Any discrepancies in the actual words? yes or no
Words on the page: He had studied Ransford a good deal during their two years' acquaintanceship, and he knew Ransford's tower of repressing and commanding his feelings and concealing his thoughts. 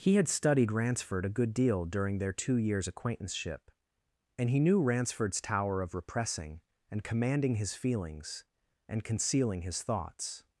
no